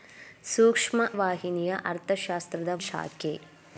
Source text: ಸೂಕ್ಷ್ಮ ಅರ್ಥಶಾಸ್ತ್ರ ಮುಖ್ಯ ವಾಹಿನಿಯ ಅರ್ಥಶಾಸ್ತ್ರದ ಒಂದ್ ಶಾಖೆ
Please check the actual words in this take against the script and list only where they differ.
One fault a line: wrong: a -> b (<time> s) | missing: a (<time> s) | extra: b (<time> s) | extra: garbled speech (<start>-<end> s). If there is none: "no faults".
missing: ಅರ್ಥಶಾಸ್ತ್ರ ಮುಖ್ಯ (1.0 s)
missing: ಒಂದ್ (2.7 s)